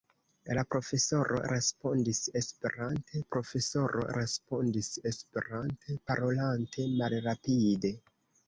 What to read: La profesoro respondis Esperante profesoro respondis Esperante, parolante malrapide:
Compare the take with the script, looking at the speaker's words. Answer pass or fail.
pass